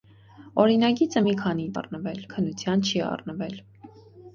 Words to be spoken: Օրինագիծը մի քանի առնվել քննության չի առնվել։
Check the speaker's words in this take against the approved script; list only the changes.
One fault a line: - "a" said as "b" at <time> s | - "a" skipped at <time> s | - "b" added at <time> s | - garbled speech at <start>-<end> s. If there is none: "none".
none